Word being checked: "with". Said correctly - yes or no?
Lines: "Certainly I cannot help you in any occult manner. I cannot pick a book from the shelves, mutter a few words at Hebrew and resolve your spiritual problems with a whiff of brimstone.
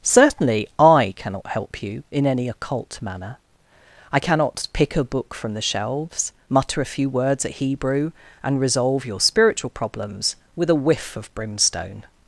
yes